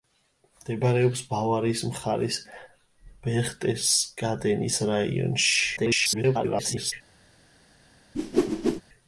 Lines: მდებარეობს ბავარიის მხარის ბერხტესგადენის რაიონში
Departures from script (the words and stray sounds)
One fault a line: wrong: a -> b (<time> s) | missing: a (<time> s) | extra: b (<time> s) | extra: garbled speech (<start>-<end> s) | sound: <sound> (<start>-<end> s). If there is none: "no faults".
extra: garbled speech (5.8-6.9 s)
sound: whoosh (8.1-8.8 s)